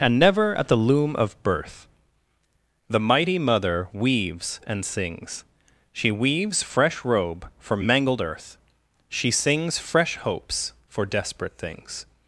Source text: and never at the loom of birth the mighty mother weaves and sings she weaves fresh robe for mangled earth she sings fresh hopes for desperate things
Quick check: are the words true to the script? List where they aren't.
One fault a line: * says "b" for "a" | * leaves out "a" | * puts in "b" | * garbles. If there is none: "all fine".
all fine